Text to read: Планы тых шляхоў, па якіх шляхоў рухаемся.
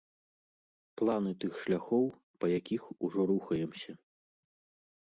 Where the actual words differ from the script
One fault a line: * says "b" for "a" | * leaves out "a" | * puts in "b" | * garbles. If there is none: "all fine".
* says "ужо" for "шляхоў"